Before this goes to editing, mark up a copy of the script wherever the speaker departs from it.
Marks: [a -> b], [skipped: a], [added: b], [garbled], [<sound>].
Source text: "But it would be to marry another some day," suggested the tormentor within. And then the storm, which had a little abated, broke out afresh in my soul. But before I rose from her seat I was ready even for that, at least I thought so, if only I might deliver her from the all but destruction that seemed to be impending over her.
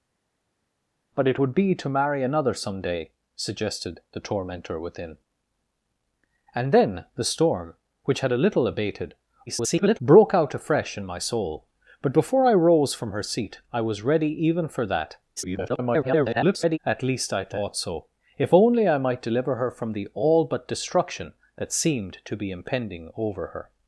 "But it would be to marry another some day," suggested the tormentor within. And then the storm, which had a little abated, [garbled] broke out afresh in my soul. But before I rose from her seat I was ready even for that, [garbled] at least I thought so, if only I might deliver her from the all but destruction that seemed to be impending over her.